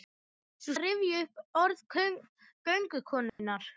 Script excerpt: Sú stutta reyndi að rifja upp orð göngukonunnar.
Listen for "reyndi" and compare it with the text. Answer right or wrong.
wrong